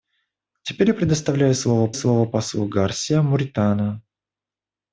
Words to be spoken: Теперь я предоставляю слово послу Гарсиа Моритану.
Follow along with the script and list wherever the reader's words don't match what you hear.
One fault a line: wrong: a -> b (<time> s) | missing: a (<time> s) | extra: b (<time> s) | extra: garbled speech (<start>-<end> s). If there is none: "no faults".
extra: слово (1.9 s)